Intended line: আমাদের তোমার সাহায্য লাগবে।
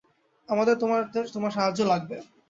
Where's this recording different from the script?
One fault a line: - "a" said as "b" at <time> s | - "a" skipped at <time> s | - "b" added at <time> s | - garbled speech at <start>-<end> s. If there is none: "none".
none